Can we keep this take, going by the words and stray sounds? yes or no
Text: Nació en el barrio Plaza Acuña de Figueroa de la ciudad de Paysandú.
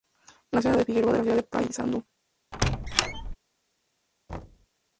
no